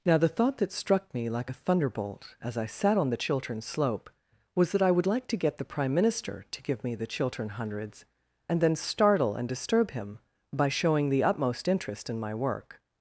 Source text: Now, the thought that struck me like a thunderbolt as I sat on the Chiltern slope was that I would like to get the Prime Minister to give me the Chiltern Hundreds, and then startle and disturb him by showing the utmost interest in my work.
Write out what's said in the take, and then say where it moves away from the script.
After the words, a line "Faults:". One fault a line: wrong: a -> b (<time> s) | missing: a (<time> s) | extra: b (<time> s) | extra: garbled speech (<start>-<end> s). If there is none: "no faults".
Now, the thought that struck me like a thunderbolt as I sat on the Chiltern slope was that I would like to get the Prime Minister to give me the Chiltern Hundreds, and then startle and disturb him by showing the utmost interest in my work.
Faults:
no faults